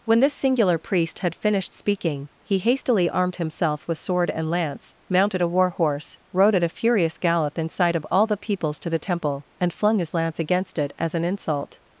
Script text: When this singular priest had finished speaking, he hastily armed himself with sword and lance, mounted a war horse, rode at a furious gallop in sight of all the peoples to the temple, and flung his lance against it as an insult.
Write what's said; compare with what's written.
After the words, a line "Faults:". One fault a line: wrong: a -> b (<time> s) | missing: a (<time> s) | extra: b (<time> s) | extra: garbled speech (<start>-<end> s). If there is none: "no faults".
When this singular priest had finished speaking, he hastily armed himself with sword and lance, mounted a war horse, rode at a furious gallop in sight of all the peoples to the temple, and flung his lance against it as an insult.
Faults:
no faults